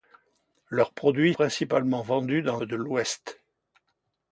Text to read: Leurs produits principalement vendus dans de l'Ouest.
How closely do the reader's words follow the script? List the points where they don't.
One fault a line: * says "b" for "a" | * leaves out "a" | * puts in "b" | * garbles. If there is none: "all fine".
all fine